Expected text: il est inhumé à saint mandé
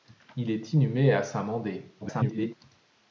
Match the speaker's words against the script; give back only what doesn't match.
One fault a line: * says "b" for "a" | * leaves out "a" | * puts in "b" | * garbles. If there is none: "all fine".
* garbles